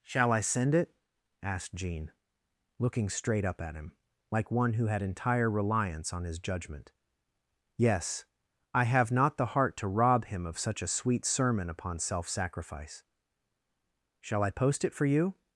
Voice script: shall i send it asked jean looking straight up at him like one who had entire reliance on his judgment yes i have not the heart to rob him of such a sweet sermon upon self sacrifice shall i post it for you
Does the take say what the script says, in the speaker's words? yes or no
yes